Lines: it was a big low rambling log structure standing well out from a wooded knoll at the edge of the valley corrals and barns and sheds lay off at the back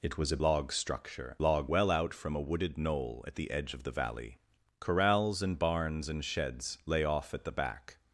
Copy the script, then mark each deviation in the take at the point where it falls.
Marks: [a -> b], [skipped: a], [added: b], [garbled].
it was a [skipped: big low rambling] log structure [standing -> log] well out from a wooded knoll at the edge of the valley corrals and barns and sheds lay off at the back